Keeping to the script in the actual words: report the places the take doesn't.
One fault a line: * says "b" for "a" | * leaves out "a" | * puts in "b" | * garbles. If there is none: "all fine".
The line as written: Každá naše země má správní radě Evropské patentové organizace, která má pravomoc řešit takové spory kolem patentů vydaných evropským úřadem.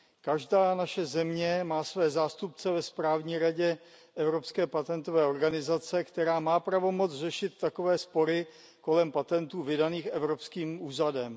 * puts in "své zástupce ve"